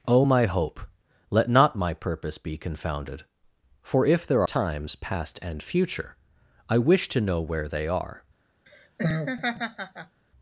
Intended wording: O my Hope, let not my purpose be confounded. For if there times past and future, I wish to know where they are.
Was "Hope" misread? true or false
false